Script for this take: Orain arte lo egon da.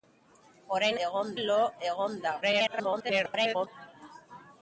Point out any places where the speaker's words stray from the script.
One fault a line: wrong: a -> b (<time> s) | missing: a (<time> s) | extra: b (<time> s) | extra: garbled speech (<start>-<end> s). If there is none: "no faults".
wrong: arte -> egon (1.1 s)
extra: garbled speech (2.4-3.7 s)